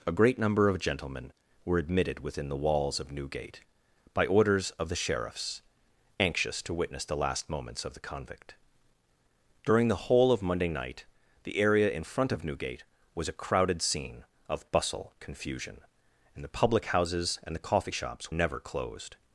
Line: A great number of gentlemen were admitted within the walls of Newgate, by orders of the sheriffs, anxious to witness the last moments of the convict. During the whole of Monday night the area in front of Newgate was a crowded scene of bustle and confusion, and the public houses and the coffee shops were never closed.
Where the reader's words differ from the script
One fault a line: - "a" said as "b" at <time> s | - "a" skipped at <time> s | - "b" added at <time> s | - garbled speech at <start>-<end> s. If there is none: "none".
- "and" skipped at 15.1 s
- "were" skipped at 18.3 s